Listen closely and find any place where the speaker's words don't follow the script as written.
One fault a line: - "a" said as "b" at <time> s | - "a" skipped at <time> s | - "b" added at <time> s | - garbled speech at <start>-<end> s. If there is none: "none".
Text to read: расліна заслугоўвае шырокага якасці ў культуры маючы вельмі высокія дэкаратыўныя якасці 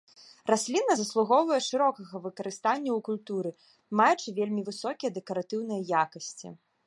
- "якасці" said as "выкарыстання" at 2.3 s